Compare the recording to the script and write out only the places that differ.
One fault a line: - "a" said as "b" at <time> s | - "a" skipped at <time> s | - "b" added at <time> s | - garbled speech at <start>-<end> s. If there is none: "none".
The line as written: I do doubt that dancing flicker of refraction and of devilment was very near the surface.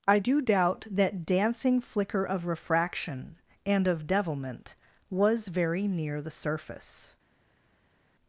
none